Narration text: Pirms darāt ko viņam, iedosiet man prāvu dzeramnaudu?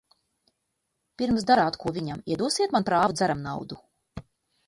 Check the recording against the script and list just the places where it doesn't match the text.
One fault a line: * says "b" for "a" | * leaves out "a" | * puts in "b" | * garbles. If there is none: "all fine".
all fine